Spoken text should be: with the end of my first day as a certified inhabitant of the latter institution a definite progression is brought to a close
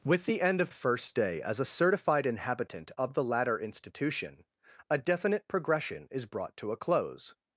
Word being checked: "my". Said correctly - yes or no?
no